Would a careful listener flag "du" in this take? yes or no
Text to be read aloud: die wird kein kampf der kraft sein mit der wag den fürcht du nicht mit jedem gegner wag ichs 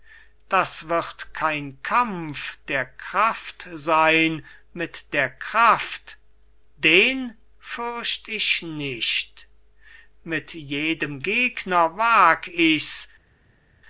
yes